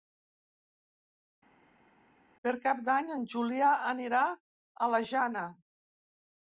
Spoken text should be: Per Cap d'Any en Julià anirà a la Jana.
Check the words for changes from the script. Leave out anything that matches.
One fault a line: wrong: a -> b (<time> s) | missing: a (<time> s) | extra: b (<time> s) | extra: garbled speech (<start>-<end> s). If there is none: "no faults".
no faults